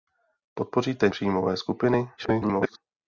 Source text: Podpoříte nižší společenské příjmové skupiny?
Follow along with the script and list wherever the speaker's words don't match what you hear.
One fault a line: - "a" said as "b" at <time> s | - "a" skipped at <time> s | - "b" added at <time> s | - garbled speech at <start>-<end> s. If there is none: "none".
- "nižší společenské" skipped at 1.1 s
- garbled speech at 2.2-2.8 s